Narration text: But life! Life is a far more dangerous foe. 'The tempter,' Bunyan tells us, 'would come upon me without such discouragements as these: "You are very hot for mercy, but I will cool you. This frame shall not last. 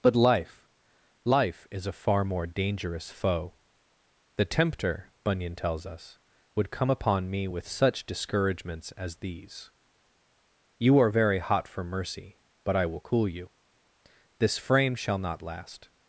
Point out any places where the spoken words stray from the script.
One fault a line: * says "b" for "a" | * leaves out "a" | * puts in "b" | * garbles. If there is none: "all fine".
* says "with" for "without"